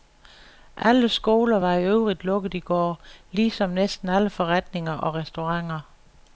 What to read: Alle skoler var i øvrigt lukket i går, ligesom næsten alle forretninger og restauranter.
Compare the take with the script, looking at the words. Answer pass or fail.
pass